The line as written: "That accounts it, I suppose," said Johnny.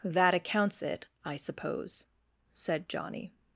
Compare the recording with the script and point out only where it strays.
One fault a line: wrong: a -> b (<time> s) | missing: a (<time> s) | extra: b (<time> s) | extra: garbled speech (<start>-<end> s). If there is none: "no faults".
no faults